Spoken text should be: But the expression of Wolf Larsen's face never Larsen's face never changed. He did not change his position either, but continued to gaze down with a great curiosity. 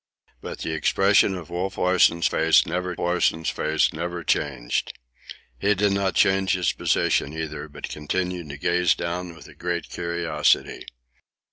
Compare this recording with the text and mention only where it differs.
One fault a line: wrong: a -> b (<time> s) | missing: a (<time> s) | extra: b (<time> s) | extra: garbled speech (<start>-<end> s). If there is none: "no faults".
no faults